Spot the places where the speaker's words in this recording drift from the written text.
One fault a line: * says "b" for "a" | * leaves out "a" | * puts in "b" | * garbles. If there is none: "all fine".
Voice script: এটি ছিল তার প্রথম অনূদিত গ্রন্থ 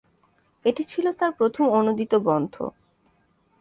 all fine